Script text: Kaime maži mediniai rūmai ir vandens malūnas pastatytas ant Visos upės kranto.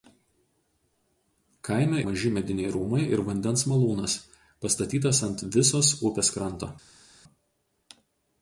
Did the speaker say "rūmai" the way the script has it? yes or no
yes